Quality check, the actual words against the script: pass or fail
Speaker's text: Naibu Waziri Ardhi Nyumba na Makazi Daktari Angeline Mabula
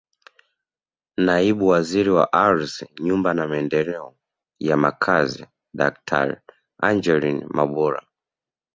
fail